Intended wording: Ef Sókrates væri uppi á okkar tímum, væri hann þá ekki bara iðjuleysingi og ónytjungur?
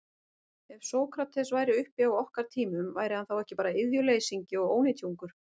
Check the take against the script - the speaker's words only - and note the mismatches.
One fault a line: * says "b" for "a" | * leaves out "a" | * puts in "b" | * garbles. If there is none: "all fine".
all fine